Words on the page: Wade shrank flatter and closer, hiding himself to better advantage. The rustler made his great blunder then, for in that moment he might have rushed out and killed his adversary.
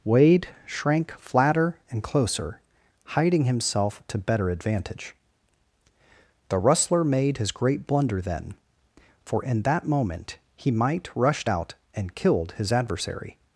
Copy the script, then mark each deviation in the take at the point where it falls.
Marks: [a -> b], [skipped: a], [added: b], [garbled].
Wade shrank flatter and closer, hiding himself to better advantage. The rustler made his great blunder then, for in that moment he might [skipped: have] rushed out and killed his adversary.